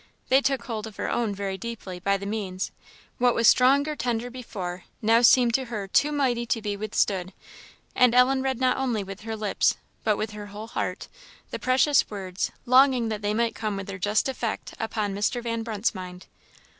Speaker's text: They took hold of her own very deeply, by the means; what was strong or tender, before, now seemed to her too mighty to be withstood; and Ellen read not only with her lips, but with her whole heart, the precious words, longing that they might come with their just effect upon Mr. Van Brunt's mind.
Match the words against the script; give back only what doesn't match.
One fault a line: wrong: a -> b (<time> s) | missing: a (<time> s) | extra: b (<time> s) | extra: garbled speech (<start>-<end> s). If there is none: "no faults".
no faults